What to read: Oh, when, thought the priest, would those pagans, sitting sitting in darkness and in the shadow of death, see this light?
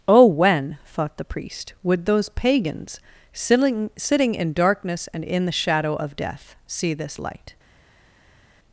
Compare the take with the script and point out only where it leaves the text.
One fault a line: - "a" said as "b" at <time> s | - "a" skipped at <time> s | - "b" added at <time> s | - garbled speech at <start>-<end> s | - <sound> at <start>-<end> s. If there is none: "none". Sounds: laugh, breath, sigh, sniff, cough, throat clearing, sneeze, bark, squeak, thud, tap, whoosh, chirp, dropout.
none